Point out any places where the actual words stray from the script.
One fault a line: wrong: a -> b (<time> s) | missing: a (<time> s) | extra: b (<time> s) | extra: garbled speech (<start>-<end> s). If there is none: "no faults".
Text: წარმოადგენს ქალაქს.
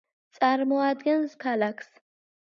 no faults